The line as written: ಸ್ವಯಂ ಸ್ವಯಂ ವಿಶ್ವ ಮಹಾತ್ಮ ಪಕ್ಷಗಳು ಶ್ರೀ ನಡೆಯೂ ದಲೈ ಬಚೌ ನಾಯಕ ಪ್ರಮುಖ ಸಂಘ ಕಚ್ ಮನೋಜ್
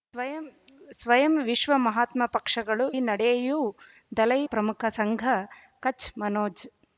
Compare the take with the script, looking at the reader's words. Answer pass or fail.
fail